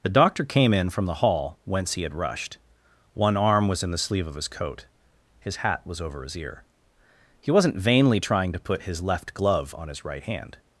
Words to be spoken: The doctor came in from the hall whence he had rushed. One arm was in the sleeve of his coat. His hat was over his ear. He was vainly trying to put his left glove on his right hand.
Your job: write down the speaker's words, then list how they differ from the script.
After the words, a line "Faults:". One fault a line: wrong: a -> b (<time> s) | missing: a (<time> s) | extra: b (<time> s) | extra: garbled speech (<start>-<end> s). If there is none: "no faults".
The doctor came in from the hall whence he had rushed. One arm was in the sleeve of his coat. His hat was over his ear. He wasn't vainly trying to put his left glove on his right hand.
Faults:
wrong: was -> wasn't (7.5 s)